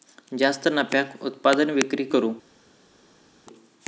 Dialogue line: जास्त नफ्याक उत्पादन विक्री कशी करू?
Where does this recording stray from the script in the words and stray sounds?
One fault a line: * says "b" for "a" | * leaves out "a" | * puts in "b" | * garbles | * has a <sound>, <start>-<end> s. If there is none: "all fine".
* leaves out "कशी"